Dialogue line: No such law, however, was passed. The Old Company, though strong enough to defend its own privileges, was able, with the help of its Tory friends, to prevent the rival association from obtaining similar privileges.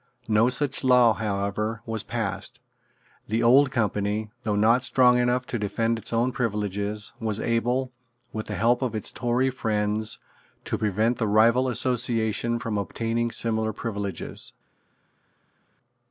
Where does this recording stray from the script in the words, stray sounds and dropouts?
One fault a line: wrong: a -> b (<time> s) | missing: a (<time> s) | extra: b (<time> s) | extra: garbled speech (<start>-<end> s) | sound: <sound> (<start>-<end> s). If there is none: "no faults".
extra: not (4.6 s)